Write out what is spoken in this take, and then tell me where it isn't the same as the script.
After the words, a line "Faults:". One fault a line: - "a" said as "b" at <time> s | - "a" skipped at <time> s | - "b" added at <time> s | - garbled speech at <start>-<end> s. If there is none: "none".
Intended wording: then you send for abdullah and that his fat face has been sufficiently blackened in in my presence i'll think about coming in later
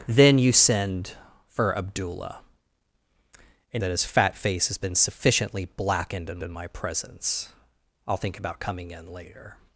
then you send for abdullah and that his fat face has been sufficiently blackened in in my presence i'll think about coming in later
Faults:
none